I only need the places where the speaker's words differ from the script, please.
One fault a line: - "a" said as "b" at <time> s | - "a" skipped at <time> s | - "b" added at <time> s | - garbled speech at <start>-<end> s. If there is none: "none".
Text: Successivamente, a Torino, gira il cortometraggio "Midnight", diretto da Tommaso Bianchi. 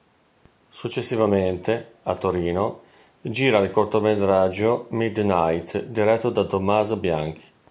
none